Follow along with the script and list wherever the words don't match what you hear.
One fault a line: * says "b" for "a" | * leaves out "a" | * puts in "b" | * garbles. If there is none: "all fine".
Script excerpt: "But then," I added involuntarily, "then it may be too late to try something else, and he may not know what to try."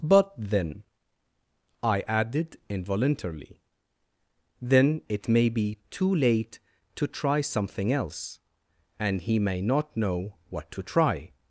all fine